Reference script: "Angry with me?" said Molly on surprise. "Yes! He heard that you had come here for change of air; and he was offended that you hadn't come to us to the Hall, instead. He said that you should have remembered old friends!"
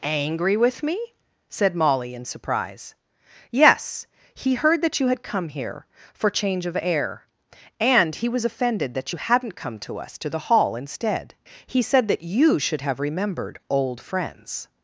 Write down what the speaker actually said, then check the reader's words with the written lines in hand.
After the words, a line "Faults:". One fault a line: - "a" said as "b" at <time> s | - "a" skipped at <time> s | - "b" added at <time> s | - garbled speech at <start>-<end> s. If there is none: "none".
"Angry with me?" said Molly in surprise. "Yes! He heard that you had come here for change of air; and he was offended that you hadn't come to us to the Hall, instead. He said that you should have remembered old friends!"
Faults:
- "on" said as "in" at 2.1 s